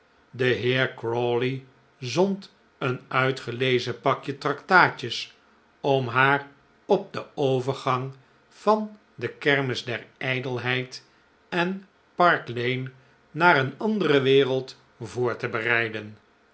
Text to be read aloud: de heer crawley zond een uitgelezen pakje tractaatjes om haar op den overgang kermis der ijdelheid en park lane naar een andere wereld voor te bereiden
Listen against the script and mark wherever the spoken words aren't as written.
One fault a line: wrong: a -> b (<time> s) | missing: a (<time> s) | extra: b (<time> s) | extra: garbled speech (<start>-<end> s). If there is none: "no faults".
extra: van de (8.5 s)